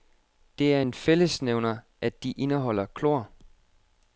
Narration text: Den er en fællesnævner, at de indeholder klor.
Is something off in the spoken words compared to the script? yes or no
yes